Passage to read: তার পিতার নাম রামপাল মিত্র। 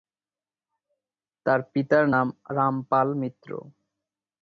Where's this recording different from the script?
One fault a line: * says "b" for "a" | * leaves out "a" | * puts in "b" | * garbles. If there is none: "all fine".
all fine